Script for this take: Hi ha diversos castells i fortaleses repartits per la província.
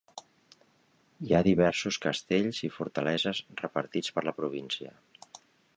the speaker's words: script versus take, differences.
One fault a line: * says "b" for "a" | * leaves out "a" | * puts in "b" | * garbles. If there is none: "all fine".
all fine